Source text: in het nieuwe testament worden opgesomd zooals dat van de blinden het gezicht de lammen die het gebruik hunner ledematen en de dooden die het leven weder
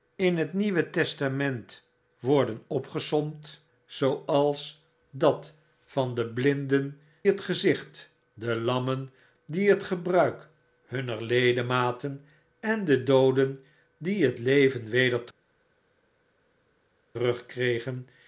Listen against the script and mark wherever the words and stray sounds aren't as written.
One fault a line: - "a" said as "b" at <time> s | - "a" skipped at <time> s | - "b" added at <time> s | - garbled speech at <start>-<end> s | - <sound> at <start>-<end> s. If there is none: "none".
none